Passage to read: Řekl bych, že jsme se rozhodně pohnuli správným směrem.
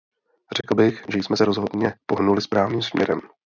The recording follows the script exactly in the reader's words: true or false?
true